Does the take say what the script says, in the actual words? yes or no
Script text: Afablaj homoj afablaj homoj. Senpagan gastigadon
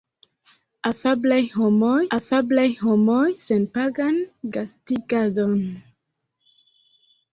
yes